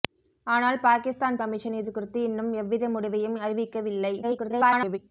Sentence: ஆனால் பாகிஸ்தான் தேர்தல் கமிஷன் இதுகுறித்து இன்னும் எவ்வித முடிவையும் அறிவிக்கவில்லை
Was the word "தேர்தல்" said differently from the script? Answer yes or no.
yes